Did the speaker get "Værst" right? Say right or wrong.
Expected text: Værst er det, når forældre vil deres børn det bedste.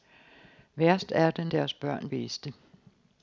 right